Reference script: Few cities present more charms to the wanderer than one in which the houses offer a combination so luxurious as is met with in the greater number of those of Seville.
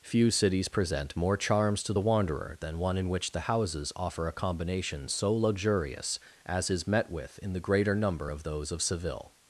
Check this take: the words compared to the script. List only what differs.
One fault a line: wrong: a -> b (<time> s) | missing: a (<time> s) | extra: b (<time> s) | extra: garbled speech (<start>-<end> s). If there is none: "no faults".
no faults